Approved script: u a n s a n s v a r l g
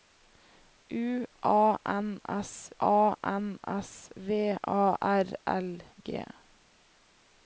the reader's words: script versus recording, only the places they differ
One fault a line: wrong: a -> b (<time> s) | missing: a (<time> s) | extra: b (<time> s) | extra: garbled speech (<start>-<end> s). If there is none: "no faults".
no faults